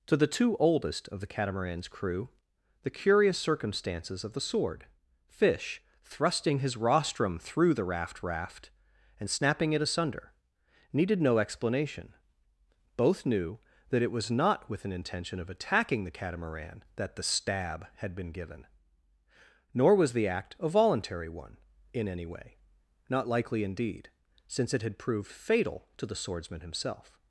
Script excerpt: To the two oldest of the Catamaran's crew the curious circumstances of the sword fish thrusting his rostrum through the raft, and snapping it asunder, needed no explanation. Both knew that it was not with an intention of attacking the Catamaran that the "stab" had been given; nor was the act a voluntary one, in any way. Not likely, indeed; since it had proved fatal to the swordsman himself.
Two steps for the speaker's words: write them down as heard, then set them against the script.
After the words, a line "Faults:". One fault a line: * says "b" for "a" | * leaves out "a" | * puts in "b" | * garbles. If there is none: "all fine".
To the two oldest of the Catamaran's crew the curious circumstances of the sword fish thrusting his rostrum through the raft raft, and snapping it asunder, needed no explanation. Both knew that it was not with an intention of attacking the Catamaran that the "stab" had been given; nor was the act a voluntary one, in any way. Not likely, indeed; since it had proved fatal to the swordsman himself.
Faults:
* puts in "raft"